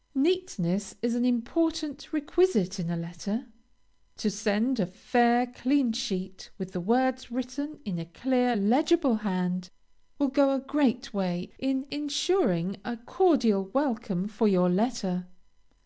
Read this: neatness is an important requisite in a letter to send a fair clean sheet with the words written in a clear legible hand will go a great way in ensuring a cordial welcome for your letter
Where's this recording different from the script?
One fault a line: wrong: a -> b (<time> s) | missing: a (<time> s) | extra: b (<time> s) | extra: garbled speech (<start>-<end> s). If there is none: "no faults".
no faults